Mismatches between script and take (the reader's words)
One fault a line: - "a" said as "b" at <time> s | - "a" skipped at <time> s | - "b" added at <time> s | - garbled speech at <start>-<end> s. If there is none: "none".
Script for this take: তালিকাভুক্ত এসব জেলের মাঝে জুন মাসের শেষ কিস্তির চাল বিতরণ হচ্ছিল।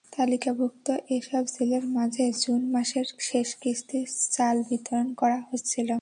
- "করা" added at 5.1 s